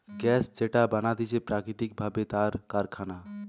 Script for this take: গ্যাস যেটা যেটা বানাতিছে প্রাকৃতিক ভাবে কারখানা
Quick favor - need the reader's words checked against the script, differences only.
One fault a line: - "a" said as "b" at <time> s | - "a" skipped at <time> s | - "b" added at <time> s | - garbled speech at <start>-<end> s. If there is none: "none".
- "যেটা" skipped at 0.8 s
- "তার" added at 2.2 s